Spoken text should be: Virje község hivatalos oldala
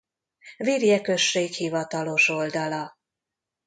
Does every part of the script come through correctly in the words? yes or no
yes